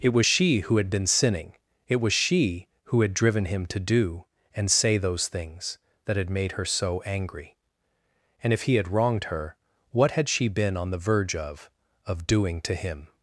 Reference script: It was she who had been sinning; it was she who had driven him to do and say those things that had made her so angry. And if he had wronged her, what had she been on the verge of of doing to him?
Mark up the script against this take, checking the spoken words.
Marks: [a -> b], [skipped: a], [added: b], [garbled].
It was she who had been sinning; it was she who had driven him to do and say those things that had made her so angry. And if he had wronged her, what had she been on the verge of of doing to him?